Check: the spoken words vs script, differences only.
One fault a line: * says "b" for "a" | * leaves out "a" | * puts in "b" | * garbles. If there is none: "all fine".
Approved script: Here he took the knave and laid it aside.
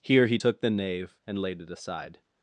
all fine